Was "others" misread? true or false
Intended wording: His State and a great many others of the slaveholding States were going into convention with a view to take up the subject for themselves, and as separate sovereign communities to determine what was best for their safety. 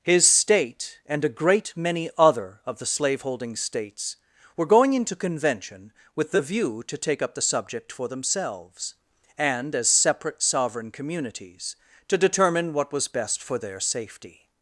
true